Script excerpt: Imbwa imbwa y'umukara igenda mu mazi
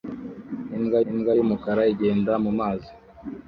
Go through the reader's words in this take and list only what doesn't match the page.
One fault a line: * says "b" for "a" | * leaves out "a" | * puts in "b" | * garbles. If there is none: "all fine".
all fine